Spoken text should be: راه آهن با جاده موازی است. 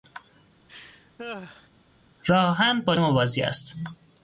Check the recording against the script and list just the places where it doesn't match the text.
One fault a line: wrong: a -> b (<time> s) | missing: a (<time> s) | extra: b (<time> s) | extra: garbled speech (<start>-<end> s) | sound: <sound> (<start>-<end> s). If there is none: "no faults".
sound: laugh (0.7-1.7 s)
missing: جاده (3.0 s)